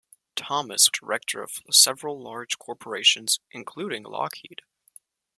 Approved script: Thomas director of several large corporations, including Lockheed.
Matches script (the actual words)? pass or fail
pass